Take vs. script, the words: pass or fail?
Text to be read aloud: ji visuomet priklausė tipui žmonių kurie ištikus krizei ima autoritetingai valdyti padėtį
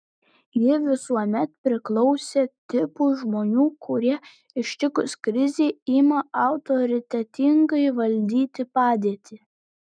pass